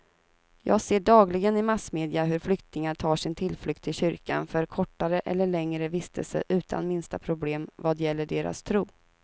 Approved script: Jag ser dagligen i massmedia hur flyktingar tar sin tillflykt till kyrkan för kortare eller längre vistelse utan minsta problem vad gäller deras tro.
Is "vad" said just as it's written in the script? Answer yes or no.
yes